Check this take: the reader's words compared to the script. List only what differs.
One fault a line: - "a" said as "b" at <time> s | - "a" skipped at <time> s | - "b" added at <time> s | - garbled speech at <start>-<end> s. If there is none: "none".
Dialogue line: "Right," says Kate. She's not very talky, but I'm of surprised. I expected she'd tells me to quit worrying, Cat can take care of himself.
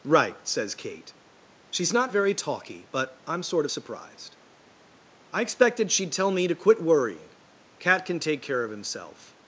- "sort" added at 3.4 s
- "tells" said as "tell" at 6.1 s